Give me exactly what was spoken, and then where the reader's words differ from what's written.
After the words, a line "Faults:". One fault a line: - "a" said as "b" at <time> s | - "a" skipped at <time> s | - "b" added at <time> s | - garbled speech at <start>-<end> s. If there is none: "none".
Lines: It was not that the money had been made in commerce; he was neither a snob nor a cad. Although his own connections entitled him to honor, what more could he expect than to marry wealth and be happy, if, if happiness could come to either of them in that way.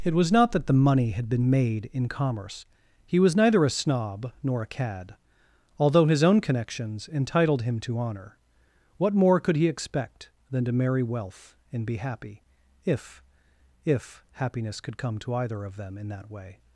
It was not that the money had been made in commerce; he was neither a snob nor a cad. Although his own connections entitled him to honor, what more could he expect than to marry wealth and be happy, if, if happiness could come to either of them in that way.
Faults:
none